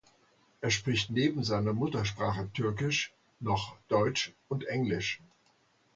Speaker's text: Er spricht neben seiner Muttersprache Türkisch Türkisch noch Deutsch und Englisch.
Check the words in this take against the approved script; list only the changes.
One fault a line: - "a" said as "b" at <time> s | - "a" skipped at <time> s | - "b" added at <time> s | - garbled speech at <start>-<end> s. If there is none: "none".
- "Türkisch" skipped at 3.1 s